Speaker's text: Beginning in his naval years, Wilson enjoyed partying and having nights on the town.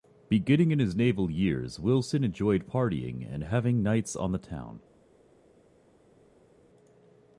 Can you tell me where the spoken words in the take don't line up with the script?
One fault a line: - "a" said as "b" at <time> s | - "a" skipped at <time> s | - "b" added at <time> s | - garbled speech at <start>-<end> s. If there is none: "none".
none